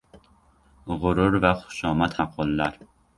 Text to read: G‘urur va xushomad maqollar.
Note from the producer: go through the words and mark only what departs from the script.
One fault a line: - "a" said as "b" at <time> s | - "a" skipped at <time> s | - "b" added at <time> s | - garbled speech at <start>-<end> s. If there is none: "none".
none